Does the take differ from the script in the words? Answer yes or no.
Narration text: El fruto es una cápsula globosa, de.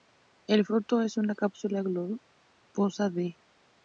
no